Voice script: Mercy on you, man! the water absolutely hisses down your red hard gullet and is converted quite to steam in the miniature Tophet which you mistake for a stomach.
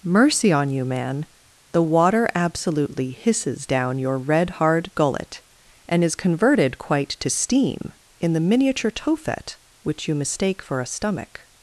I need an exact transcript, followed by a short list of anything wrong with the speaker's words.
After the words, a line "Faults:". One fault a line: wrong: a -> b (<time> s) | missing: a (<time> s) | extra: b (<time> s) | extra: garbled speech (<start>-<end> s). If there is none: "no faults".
Mercy on you, man! the water absolutely hisses down your red hard gullet and is converted quite to steam in the miniature Tophet which you mistake for a stomach.
Faults:
no faults